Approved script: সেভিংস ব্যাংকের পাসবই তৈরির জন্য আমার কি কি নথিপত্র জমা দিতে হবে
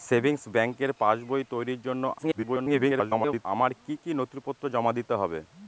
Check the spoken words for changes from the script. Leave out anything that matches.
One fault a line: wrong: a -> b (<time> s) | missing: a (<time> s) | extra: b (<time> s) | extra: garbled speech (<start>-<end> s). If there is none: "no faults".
extra: garbled speech (2.2-3.5 s)